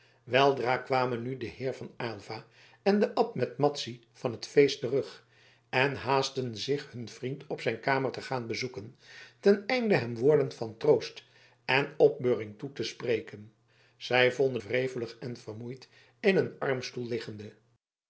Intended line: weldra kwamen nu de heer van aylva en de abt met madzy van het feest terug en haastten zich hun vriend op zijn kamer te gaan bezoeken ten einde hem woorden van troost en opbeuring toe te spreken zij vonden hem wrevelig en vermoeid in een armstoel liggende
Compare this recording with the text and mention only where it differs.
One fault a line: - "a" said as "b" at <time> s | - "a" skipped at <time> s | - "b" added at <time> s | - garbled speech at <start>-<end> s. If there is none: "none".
- "hem" skipped at 14.6 s